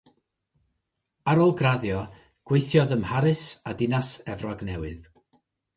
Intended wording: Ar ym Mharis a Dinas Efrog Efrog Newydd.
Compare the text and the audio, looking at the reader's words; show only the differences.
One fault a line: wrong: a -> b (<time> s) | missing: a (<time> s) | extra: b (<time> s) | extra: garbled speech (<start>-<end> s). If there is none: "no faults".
extra: ôl graddio gweithiodd (1.4 s)
missing: Efrog (4.7 s)